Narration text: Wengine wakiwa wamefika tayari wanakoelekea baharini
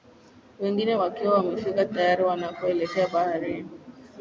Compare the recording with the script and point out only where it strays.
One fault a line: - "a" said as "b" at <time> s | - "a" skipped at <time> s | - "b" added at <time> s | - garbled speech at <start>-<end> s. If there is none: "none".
none